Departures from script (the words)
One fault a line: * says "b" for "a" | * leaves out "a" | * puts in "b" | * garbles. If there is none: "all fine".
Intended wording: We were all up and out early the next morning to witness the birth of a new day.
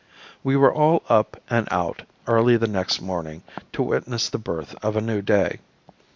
all fine